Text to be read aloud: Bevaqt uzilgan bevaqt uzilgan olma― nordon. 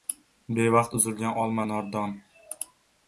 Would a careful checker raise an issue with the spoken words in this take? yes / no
yes